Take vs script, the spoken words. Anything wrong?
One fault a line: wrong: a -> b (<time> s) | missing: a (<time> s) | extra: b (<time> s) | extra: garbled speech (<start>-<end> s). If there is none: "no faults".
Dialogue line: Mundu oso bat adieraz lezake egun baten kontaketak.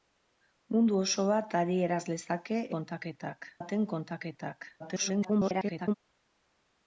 wrong: egun -> kontaketak (2.8 s)
extra: garbled speech (4.8-5.9 s)